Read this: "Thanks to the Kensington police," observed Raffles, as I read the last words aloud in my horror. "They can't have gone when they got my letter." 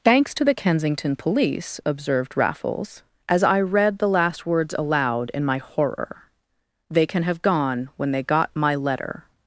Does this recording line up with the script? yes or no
no